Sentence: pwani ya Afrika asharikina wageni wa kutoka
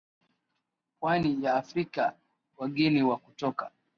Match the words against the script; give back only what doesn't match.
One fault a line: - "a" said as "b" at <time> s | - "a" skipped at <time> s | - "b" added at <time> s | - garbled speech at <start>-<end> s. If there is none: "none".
- "asharikina" skipped at 2.2 s